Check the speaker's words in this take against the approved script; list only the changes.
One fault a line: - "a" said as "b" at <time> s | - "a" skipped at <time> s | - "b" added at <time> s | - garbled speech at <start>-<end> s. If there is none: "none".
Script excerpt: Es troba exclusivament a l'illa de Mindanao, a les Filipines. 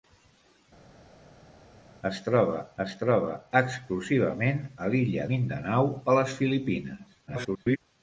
- "es troba" added at 2.8 s
- "de" skipped at 5.3 s
- garbled speech at 7.3-7.8 s